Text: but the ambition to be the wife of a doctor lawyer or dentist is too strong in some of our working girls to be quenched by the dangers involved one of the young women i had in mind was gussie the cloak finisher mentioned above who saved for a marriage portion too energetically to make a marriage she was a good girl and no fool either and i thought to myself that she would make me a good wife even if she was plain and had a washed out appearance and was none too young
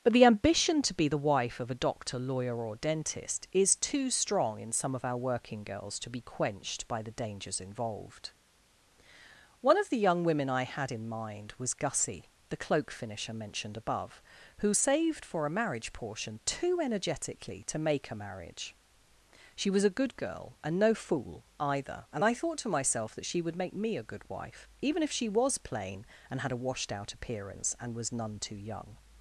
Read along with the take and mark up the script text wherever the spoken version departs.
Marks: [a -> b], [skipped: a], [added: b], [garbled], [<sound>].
but the ambition to be the wife of a doctor lawyer or dentist is too strong in some of our working girls to be quenched by the dangers involved one of the young women i had in mind was gussie the cloak finisher mentioned above who saved for a marriage portion too energetically to make a marriage she was a good girl and no fool either and i thought to myself that she would make me a good wife even if she was plain and had a washed out appearance and was none too young